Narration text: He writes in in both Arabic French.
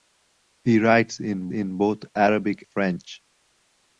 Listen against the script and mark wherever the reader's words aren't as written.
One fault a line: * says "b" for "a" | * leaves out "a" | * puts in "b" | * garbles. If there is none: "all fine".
all fine